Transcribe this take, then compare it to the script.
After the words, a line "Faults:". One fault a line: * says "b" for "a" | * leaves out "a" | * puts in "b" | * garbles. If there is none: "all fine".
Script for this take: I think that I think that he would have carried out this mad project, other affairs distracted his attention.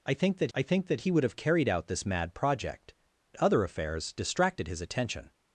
I think that I think that he would have carried out this mad project, other affairs distracted his attention.
Faults:
all fine